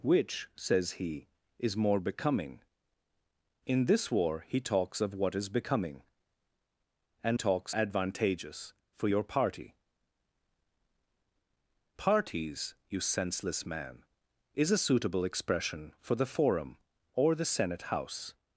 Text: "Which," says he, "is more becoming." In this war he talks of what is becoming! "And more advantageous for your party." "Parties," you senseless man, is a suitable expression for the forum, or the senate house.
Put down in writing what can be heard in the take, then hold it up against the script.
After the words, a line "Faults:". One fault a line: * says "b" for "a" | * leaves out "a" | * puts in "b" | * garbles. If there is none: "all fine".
"Which," says he, "is more becoming." In this war he talks of what is becoming! "And talks advantageous for your party." "Parties," you senseless man, is a suitable expression for the forum, or the senate house.
Faults:
* says "talks" for "more"